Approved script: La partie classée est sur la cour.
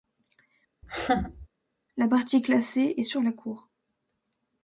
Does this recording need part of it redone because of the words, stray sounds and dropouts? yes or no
yes